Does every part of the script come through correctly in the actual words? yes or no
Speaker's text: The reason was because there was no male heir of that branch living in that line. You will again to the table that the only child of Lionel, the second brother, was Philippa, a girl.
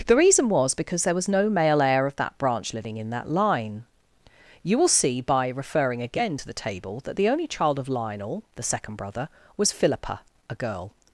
no